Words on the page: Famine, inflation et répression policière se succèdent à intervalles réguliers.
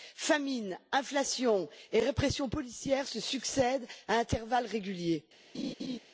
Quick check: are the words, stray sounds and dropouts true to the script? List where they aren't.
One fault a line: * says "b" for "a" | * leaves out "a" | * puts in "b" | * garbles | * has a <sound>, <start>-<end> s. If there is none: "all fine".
* has a laugh, 5.5-6.0 s